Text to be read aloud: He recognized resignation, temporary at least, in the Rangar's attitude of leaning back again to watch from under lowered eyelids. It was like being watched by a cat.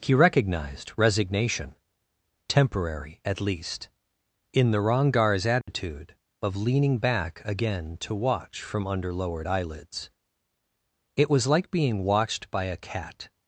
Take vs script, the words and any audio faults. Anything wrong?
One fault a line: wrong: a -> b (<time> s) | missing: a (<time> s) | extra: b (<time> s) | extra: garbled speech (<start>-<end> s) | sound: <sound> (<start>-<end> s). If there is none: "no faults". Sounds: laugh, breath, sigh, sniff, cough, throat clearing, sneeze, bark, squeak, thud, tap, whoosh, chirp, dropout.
sound: dropout (5.6-5.7 s)